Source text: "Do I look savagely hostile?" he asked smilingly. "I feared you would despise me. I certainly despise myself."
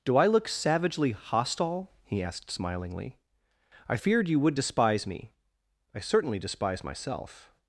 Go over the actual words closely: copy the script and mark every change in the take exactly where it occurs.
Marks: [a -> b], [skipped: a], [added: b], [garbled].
"Do I look savagely hostile?" he asked smilingly. "I feared you would despise me. I certainly despise myself."